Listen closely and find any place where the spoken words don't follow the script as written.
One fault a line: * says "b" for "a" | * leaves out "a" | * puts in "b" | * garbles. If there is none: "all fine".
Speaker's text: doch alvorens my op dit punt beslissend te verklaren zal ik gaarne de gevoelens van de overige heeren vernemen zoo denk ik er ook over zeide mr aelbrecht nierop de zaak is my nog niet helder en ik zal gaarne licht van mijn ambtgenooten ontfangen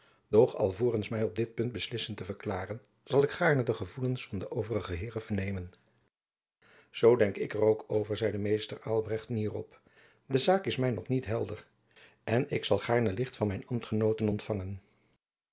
all fine